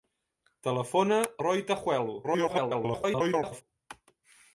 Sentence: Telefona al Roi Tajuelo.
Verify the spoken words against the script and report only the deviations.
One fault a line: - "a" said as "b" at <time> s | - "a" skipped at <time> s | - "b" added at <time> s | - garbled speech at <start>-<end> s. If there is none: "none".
- "al" skipped at 1.2 s
- garbled speech at 2.2-3.6 s